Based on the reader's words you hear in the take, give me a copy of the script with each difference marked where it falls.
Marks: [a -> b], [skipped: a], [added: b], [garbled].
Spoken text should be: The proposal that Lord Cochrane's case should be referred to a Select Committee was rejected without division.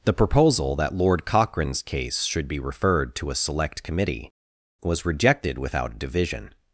The proposal that Lord Cochrane's case should be referred to a Select Committee was rejected without division.